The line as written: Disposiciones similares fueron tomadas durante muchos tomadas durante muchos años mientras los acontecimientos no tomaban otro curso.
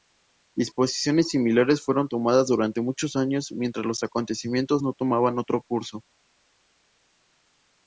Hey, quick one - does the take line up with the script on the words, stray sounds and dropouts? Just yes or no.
no